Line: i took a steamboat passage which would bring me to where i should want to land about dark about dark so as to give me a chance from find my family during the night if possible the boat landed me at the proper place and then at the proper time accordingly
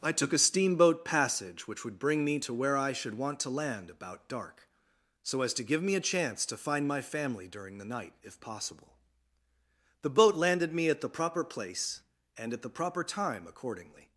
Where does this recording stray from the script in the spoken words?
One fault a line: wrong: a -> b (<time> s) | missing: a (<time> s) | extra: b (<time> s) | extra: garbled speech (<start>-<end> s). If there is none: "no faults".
missing: about dark (4.7 s)
wrong: from -> to (6.4 s)
missing: then (12.5 s)